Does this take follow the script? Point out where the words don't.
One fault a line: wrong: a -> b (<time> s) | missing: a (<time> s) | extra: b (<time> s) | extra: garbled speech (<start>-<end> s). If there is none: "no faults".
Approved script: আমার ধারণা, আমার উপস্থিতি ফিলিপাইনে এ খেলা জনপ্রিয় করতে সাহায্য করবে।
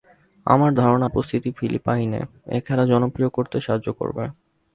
missing: আমার (1.1 s)